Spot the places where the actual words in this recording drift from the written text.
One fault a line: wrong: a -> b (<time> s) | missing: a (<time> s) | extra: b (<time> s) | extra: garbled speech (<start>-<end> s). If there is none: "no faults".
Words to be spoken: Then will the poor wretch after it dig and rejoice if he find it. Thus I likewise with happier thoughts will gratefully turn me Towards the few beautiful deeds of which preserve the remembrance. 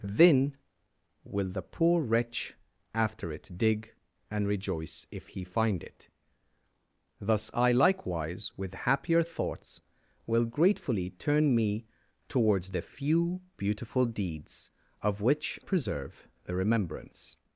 no faults